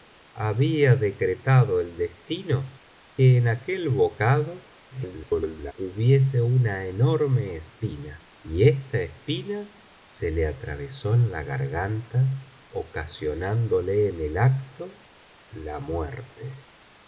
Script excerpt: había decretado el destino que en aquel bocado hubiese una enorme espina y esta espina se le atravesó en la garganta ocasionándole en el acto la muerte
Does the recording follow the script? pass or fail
fail